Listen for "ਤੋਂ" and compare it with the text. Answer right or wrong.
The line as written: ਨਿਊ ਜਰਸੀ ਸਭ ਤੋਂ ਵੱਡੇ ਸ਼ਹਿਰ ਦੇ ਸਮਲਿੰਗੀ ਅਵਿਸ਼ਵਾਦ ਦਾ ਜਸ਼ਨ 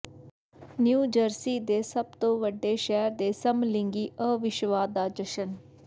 right